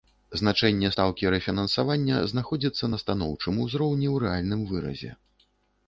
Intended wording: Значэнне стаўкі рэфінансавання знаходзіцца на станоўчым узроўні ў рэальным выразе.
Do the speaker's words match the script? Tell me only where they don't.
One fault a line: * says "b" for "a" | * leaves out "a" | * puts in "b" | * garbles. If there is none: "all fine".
all fine